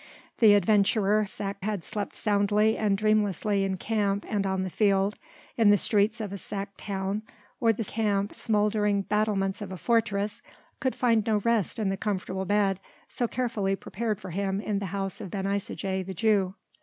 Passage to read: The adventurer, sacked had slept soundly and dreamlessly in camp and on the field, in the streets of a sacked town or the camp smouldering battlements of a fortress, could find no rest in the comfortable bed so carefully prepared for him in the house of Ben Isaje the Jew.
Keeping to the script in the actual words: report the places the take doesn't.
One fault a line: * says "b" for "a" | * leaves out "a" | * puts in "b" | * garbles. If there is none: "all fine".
all fine